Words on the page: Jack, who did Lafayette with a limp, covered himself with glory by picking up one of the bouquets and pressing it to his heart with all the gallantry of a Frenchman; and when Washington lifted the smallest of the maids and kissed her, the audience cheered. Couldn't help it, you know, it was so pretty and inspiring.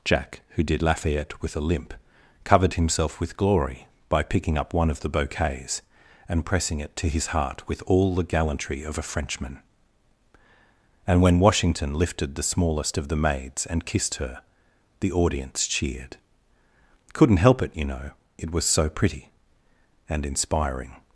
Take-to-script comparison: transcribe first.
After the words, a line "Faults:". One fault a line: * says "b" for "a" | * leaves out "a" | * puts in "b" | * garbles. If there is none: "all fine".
Jack, who did Lafayette with a limp, covered himself with glory by picking up one of the bouquets and pressing it to his heart with all the gallantry of a Frenchman; and when Washington lifted the smallest of the maids and kissed her, the audience cheered. Couldn't help it, you know, it was so pretty and inspiring.
Faults:
all fine